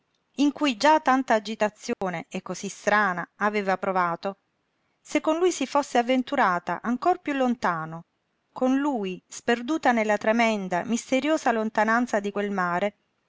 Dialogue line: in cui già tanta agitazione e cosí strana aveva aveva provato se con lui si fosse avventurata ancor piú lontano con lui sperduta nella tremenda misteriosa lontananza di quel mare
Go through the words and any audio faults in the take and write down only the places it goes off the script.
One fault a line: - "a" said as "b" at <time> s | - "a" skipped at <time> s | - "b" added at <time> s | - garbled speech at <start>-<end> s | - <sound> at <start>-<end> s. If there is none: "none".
- dropout at 1.9-2.0 s
- "aveva" skipped at 3.8 s